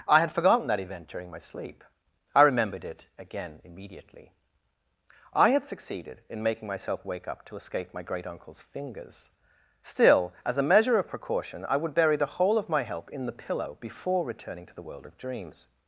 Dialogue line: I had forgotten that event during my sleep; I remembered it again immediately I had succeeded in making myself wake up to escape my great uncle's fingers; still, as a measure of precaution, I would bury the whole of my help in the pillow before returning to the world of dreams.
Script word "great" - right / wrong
right